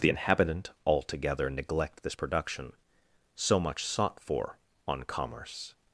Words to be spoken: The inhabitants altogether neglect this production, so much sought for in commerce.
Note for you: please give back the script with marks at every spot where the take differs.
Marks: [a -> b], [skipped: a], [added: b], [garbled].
The [inhabitants -> inhabitant] altogether neglect this production, so much sought for [in -> on] commerce.